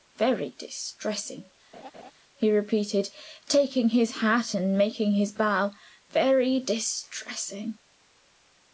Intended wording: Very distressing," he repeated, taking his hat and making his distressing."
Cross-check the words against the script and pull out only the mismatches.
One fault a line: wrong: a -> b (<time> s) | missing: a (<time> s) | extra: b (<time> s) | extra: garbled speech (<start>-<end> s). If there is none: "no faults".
extra: bow Very (5.3 s)